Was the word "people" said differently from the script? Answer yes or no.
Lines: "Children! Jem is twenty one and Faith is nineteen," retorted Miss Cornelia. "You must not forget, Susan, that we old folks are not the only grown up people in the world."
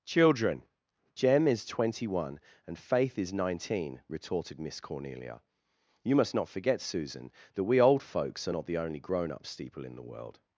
yes